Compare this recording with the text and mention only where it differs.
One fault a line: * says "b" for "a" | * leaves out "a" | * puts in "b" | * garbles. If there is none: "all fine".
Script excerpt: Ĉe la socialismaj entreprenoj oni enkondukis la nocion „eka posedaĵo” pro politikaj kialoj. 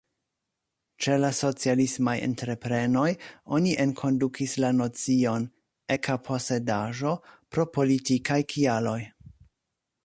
all fine